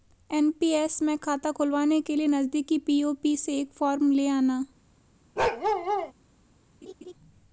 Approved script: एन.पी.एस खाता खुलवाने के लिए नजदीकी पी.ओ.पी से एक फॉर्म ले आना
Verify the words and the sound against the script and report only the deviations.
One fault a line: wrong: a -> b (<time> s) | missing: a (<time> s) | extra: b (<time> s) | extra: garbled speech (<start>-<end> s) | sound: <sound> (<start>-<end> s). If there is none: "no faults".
extra: में (1.0 s)
sound: bark (5.4-6.1 s)
sound: laugh (6.8-7.1 s)